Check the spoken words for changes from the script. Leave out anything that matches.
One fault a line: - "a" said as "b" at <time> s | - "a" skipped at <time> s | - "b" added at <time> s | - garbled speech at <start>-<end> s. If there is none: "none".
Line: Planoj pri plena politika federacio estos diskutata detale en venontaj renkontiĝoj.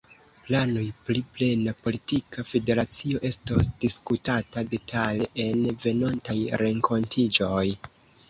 none